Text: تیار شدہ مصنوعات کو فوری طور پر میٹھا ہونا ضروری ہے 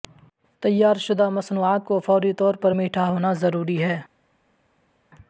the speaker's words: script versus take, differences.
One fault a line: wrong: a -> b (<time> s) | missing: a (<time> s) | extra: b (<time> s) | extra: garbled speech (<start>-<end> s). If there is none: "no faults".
no faults